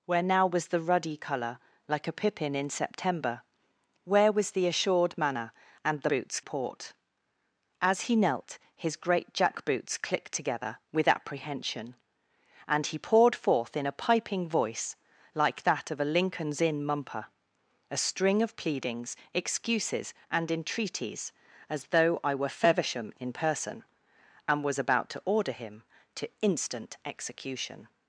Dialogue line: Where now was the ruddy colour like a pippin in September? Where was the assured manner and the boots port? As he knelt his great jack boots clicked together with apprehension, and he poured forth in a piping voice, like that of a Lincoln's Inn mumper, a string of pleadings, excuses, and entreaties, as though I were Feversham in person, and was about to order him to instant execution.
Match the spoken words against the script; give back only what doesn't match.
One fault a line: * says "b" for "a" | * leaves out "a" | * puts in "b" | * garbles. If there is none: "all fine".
all fine